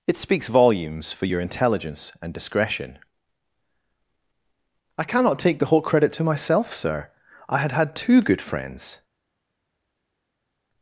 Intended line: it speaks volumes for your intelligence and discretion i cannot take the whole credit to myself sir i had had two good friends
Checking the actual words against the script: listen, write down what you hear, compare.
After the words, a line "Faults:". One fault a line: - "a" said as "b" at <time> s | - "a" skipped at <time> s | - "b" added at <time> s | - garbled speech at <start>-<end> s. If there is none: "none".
it speaks volumes for your intelligence and discretion i cannot take the whole credit to myself sir i had had two good friends
Faults:
none